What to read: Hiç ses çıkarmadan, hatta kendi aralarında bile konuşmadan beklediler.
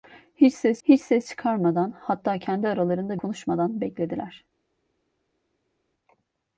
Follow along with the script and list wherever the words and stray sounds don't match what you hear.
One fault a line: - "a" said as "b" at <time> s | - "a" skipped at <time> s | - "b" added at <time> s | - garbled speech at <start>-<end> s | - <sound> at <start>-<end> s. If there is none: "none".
- "hiç ses" added at 0.8 s
- "bile" skipped at 3.2 s